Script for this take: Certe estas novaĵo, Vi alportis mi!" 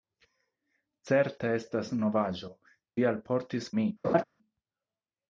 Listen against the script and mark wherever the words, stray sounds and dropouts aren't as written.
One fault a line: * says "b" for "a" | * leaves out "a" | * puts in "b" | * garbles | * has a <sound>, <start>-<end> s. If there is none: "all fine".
* has a laugh, 4.0-4.2 s